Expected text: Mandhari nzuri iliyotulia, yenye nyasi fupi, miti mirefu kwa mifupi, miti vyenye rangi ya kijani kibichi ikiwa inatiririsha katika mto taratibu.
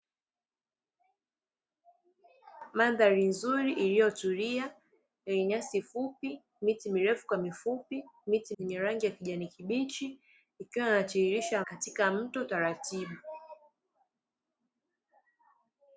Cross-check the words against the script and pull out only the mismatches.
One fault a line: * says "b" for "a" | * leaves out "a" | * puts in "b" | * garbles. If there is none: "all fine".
all fine